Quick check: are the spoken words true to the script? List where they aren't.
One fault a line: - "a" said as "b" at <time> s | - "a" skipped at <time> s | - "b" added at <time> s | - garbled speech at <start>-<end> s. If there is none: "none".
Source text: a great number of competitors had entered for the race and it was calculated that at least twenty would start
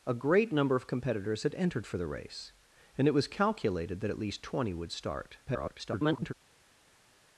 - garbled speech at 5.5-6.3 s